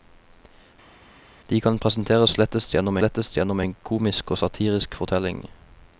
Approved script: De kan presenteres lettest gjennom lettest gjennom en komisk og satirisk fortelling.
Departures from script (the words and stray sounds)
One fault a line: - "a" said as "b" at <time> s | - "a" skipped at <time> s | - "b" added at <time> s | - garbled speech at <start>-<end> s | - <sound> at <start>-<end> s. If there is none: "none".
none